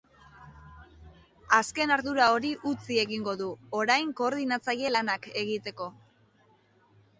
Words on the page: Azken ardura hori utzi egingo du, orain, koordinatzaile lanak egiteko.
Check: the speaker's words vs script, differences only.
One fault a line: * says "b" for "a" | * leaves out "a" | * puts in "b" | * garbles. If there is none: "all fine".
all fine